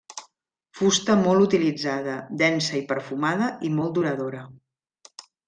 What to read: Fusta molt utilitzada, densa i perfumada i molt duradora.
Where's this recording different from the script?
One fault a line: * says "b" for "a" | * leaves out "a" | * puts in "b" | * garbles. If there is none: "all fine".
all fine